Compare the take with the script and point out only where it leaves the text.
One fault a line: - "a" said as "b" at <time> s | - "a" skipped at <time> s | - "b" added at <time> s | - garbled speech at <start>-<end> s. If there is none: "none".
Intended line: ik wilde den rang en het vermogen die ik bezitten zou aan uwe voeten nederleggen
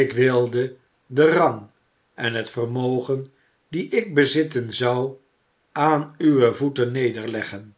none